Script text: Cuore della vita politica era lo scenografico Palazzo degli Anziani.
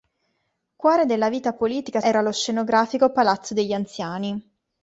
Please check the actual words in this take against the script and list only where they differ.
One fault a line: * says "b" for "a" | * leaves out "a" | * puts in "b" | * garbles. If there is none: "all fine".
all fine